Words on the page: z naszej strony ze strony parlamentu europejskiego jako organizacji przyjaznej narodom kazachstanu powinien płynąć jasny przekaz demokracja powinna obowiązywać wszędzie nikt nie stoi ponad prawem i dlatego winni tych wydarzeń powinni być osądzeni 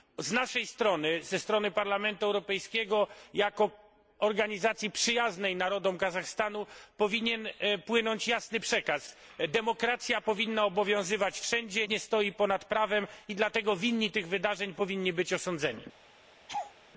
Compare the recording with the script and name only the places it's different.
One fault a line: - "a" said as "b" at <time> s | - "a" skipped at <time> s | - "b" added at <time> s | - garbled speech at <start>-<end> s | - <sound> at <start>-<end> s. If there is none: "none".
- "nikt" skipped at 11.9 s
- laugh at 16.5-16.7 s